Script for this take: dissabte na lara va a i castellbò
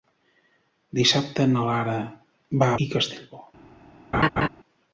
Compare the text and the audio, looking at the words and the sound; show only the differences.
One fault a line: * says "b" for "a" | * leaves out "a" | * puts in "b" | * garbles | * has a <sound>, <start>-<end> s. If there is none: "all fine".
* has a laugh, 4.1-4.5 s